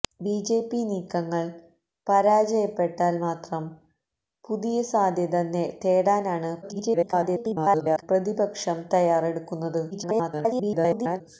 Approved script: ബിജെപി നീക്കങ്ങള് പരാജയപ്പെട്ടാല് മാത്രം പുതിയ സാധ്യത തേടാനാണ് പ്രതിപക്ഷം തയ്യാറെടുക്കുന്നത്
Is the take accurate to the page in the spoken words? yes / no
no